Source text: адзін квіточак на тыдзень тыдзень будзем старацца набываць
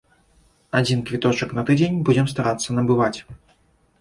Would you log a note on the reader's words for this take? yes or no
yes